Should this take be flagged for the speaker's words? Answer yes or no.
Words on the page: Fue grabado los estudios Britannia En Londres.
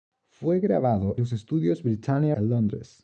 no